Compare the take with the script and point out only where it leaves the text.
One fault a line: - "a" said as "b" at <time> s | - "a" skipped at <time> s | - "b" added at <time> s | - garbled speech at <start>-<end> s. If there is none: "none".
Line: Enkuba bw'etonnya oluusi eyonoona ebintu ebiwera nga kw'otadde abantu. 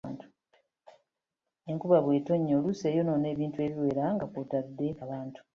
none